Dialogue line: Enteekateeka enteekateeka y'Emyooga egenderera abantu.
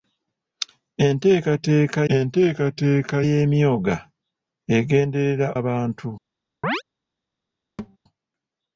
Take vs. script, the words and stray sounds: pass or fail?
fail